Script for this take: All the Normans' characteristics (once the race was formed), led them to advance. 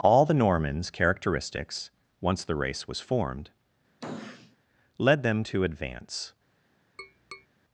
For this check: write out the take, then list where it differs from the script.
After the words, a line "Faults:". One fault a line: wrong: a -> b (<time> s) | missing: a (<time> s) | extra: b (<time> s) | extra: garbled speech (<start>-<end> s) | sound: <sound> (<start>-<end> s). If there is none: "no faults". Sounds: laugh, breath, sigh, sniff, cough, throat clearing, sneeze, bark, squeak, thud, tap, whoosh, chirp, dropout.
All the Normans' characteristics (once the race was formed), led them to advance.
Faults:
sound: sniff (4.0-4.6 s)
sound: tap (7.0-7.5 s)